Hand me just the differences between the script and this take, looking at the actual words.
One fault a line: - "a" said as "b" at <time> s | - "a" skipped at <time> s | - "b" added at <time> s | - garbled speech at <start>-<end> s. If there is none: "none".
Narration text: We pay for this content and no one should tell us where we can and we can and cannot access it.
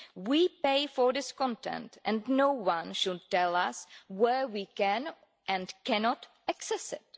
- "we can and" skipped at 5.7 s